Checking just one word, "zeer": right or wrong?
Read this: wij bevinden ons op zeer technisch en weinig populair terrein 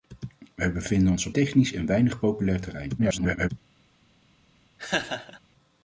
wrong